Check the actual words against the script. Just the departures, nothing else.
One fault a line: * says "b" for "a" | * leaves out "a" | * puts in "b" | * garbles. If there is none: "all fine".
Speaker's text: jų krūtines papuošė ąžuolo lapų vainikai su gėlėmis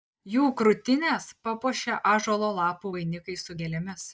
all fine